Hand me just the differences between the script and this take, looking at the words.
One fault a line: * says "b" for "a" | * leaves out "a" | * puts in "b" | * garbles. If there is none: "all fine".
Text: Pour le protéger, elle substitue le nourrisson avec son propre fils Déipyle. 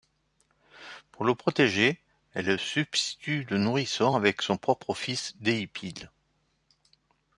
all fine